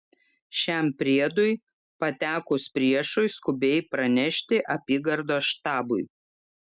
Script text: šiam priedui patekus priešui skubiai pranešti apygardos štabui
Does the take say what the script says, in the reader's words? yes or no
yes